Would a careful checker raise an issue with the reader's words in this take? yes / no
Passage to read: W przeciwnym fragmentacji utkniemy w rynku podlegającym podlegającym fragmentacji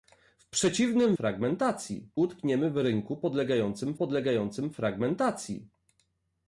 no